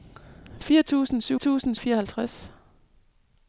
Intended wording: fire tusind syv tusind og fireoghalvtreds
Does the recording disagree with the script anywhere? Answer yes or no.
no